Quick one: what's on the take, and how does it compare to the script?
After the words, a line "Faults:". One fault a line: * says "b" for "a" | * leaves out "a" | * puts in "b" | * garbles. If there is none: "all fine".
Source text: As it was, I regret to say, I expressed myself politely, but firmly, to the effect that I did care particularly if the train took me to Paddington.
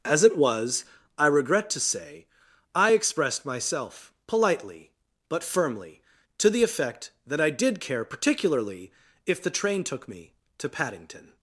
As it was, I regret to say, I expressed myself politely, but firmly, to the effect that I did care particularly if the train took me to Paddington.
Faults:
all fine